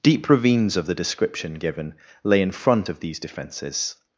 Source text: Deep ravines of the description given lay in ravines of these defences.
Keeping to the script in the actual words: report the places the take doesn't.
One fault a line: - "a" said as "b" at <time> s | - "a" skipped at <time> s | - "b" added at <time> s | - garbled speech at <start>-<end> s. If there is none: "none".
- "ravines" said as "front" at 2.5 s